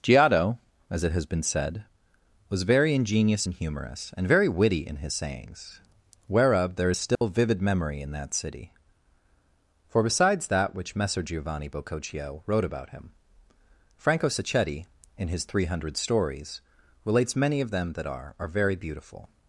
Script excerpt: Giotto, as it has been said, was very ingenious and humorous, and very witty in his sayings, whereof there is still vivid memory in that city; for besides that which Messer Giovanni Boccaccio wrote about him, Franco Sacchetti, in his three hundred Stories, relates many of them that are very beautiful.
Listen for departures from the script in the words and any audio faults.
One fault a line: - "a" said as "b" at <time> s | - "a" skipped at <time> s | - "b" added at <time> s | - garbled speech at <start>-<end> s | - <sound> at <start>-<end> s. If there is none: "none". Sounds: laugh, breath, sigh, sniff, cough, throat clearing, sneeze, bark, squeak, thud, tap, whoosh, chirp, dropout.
- dropout at 7.1-7.2 s
- "are" added at 18.4 s